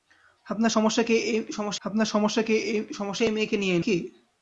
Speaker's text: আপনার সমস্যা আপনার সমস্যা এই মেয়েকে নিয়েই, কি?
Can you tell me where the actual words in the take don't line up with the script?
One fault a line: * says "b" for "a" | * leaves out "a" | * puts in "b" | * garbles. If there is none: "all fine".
all fine